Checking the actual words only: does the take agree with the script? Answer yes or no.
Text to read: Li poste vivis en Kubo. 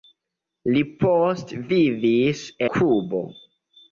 no